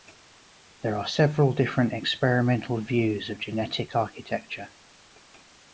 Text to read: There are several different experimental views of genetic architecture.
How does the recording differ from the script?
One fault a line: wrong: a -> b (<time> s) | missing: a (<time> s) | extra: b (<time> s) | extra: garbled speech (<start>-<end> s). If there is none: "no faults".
no faults